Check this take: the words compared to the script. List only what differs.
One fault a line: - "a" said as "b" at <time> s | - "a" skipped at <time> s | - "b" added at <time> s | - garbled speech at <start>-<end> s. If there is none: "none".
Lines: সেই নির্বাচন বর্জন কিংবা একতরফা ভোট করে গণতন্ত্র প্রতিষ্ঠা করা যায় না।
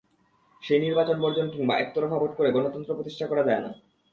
none